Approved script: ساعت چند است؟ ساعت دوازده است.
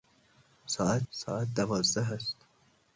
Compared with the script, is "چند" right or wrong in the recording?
wrong